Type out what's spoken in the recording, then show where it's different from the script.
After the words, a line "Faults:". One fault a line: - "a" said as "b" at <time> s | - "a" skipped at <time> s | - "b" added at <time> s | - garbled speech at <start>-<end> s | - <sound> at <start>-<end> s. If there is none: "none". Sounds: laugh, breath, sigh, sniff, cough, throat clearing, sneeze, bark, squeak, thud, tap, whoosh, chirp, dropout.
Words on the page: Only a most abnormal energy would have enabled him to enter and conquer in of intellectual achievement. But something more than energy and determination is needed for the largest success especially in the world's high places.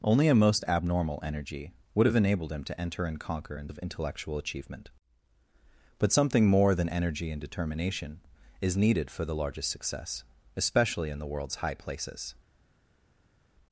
Only a most abnormal energy would have enabled him to enter and conquer in of intellectual achievement. But something more than energy and determination is needed for the largest success especially in the world's high places.
Faults:
none